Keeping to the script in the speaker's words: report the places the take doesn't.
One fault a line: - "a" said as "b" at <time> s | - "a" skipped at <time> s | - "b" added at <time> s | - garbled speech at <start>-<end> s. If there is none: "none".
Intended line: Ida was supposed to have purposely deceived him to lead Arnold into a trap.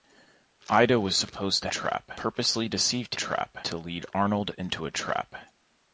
- "have" said as "trap" at 1.7 s
- "him" said as "trap" at 3.1 s